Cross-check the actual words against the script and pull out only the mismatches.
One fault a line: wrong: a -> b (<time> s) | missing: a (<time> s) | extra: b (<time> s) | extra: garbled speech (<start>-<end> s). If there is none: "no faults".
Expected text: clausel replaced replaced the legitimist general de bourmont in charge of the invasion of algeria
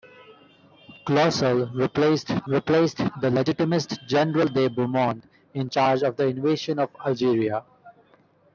no faults